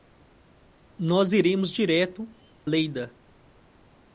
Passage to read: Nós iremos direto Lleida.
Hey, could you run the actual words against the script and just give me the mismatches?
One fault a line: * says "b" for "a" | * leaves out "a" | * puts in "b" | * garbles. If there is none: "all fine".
all fine